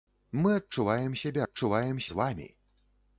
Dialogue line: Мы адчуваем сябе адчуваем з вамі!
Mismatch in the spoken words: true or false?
false